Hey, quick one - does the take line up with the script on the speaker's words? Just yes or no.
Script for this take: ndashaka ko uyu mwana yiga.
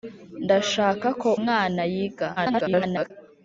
no